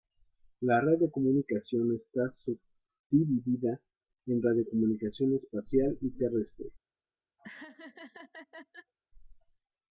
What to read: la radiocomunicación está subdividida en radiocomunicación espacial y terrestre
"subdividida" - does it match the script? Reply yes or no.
yes